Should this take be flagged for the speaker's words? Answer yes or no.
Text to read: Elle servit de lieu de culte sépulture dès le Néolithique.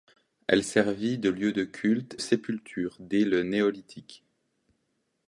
no